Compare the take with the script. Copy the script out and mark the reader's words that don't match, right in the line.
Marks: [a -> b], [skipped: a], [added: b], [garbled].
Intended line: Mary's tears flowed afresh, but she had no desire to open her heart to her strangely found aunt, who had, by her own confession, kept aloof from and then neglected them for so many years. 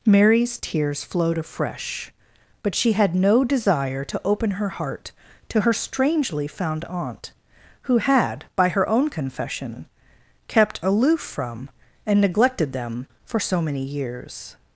Mary's tears flowed afresh, but she had no desire to open her heart to her strangely found aunt, who had, by her own confession, kept aloof from and [skipped: then] neglected them for so many years.